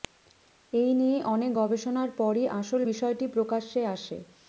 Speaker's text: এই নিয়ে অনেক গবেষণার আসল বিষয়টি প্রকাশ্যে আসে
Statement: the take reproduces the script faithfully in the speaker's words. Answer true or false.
false